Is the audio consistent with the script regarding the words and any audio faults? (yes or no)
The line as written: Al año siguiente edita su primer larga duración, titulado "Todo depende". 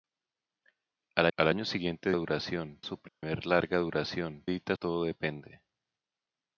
no